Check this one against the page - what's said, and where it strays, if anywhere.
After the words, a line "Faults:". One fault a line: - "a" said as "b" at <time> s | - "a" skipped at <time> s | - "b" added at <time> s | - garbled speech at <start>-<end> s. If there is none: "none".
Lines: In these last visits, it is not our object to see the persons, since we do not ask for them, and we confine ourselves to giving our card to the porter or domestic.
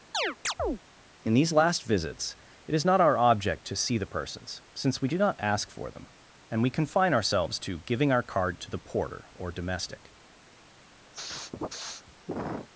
In these last visits, it is not our object to see the persons, since we do not ask for them, and we confine ourselves to giving our card to the porter or domestic.
Faults:
none